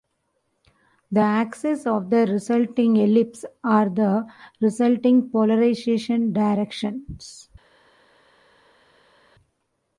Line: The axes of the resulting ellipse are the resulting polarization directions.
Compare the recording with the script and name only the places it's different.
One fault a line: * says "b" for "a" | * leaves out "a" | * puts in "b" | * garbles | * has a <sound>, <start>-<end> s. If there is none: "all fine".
all fine